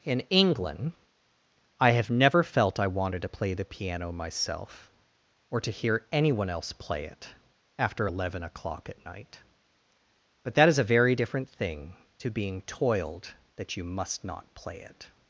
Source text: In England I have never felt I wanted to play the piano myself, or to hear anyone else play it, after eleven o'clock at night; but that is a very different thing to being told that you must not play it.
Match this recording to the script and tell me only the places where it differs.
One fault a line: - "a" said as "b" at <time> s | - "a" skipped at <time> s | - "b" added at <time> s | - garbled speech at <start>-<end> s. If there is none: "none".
- "told" said as "toiled" at 12.6 s